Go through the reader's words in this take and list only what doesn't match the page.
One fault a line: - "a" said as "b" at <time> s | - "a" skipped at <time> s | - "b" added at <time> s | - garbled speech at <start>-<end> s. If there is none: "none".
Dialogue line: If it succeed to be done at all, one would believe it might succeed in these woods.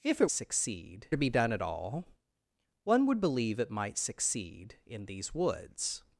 none